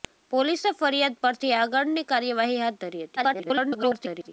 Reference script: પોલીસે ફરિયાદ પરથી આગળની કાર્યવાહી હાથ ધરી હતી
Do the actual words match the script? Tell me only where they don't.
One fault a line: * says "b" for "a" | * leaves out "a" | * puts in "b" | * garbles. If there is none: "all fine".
* garbles